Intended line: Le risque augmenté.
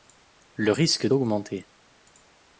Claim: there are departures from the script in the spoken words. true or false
false